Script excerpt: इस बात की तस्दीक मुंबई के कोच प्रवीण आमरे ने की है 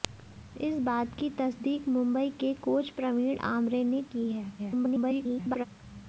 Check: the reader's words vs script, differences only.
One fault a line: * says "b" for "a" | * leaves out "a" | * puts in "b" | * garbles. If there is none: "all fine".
* garbles